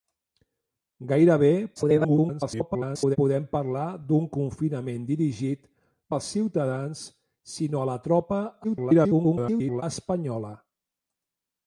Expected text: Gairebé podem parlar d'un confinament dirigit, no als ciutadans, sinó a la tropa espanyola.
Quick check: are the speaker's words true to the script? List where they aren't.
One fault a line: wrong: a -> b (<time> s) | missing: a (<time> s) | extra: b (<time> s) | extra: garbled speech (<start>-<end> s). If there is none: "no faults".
extra: garbled speech (1.8-3.2 s)
missing: no (5.6 s)
extra: garbled speech (8.6-9.8 s)